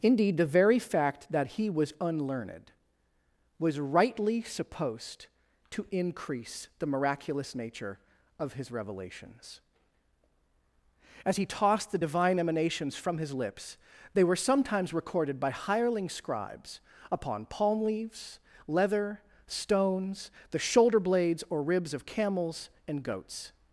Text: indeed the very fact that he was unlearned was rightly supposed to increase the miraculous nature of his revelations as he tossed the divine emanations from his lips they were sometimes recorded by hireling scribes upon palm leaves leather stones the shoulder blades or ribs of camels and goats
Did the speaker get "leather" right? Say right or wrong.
right